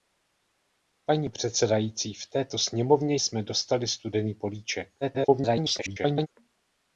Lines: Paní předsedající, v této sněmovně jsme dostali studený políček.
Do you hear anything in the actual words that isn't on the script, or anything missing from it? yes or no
yes